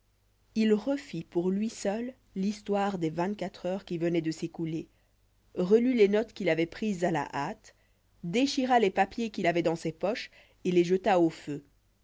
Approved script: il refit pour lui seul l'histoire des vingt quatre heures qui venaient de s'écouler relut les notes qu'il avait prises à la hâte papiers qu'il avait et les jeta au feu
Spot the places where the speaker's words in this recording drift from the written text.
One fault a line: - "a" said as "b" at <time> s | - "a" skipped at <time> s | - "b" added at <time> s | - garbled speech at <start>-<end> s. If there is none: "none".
- "déchira les" added at 8.2 s
- "dans ses poches" added at 9.6 s